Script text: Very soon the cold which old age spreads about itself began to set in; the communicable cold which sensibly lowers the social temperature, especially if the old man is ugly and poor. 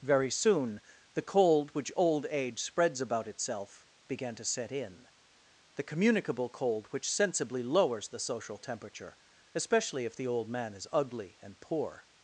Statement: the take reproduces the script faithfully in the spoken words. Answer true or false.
true